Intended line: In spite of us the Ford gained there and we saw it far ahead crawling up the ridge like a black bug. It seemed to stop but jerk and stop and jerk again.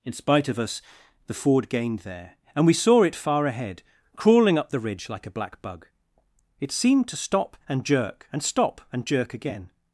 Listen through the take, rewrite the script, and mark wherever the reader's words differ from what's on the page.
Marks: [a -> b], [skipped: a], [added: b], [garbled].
In spite of us the Ford gained there and we saw it far ahead crawling up the ridge like a black bug. It seemed to stop [but -> and] jerk and stop and jerk again.